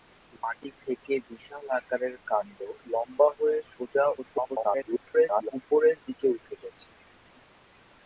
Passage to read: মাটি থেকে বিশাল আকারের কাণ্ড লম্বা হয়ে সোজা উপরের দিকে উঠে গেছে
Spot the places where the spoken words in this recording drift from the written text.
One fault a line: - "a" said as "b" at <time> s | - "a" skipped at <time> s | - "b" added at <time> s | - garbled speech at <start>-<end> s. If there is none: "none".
- garbled speech at 4.2-5.5 s